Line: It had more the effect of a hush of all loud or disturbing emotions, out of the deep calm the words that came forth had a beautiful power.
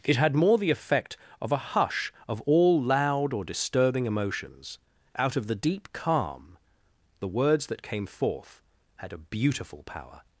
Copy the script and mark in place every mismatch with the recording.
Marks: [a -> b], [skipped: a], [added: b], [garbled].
It had more the effect of a hush of all loud or disturbing emotions, out of the deep calm the words that came forth had a beautiful power.